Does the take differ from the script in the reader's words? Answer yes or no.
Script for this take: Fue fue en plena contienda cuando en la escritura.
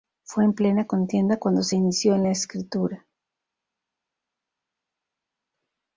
yes